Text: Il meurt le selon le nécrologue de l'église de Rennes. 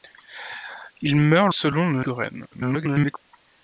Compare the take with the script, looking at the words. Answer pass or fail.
fail